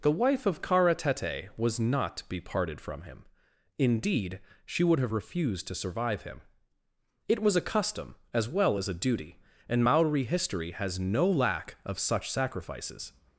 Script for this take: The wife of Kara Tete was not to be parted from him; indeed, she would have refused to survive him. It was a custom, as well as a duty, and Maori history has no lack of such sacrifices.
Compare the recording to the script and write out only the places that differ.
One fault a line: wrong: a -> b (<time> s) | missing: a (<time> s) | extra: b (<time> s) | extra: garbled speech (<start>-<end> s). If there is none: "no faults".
no faults